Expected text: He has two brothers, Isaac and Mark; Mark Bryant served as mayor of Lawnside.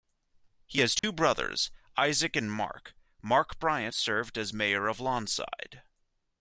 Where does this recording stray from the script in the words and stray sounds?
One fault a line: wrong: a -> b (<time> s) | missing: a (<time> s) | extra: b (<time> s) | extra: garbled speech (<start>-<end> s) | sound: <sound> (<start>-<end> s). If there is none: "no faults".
sound: dropout (1.0-1.0 s)